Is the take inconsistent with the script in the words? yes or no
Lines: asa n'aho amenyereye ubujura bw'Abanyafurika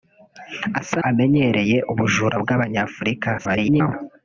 yes